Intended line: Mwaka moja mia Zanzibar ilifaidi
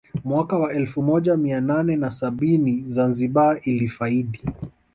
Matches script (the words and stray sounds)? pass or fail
fail